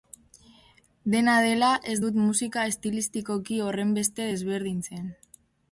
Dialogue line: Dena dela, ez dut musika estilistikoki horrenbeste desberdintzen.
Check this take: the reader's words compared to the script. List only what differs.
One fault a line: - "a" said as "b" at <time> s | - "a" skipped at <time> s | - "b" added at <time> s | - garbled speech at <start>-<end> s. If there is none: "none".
none